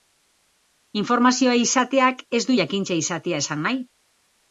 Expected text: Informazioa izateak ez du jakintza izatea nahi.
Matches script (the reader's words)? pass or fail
fail